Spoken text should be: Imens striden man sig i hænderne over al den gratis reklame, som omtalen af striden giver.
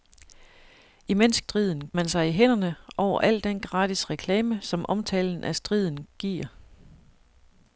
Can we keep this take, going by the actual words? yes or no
yes